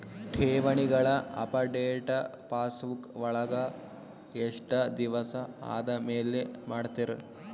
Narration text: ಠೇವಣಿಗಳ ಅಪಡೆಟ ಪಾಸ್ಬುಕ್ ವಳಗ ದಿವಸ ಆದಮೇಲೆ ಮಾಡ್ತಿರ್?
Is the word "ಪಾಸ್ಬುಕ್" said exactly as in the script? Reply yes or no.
yes